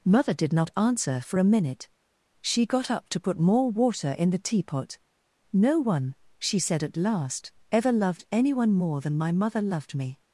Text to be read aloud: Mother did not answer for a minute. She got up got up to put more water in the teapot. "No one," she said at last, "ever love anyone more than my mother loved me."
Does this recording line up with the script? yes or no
no